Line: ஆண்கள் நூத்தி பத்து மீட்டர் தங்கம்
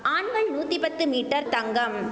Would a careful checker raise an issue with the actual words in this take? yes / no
no